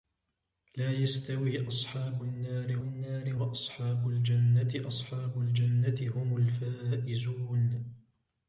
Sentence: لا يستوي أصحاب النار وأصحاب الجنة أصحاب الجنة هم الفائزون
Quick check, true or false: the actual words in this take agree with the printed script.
false